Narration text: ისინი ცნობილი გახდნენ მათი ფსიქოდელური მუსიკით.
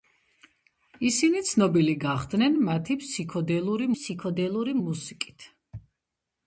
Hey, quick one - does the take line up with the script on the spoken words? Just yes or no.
no